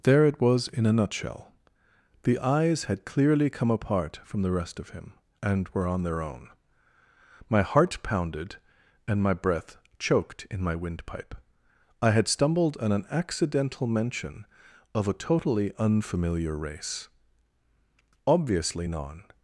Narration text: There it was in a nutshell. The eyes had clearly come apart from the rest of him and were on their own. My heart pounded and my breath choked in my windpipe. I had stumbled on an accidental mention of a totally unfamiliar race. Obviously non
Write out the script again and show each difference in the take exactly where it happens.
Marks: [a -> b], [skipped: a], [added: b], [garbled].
There it was in a nutshell. The eyes had clearly come apart from the rest of him and were on their own. My heart pounded and my breath choked in my windpipe. I had stumbled on an accidental mention of a totally unfamiliar race. Obviously non